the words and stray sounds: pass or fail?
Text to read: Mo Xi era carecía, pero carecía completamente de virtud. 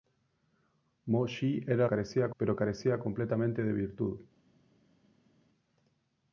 pass